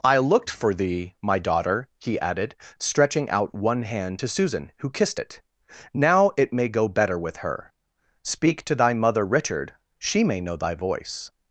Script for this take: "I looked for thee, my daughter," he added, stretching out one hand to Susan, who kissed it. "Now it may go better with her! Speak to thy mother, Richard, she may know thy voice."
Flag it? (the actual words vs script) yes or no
no